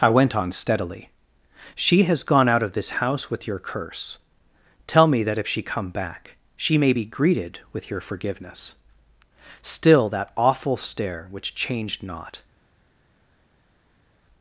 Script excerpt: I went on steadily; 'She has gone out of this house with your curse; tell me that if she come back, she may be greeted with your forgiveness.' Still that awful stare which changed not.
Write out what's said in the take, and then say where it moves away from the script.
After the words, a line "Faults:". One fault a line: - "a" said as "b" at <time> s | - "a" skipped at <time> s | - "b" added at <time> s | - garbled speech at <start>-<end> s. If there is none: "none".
I went on steadily; 'She has gone out of this house with your curse; tell me that if she come back, she may be greeted with your forgiveness.' Still that awful stare which changed not.
Faults:
none